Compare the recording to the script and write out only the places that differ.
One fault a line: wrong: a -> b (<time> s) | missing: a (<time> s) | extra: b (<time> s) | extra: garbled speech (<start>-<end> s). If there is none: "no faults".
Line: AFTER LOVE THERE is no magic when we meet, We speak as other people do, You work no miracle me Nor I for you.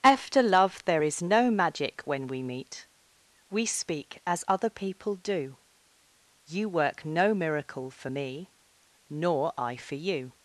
extra: for (7.9 s)